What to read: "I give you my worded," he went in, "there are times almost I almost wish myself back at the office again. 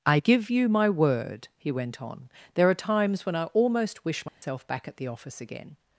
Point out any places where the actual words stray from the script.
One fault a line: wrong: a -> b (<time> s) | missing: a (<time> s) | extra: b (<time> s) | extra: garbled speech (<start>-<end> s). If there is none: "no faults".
wrong: worded -> word (0.9 s)
wrong: in -> on (2.0 s)
wrong: almost -> when (3.2 s)